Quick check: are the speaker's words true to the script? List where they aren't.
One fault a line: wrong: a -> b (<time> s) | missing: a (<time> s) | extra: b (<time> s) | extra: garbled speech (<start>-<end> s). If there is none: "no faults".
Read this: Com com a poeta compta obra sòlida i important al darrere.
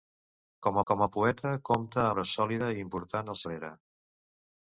no faults